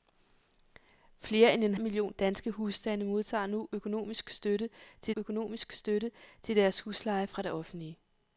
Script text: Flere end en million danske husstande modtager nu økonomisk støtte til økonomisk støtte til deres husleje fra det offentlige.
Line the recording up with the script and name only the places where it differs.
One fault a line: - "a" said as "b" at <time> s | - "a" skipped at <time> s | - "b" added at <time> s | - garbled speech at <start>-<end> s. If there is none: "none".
none